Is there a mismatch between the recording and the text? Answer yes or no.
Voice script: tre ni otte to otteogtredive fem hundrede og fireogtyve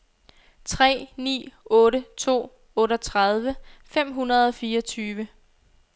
no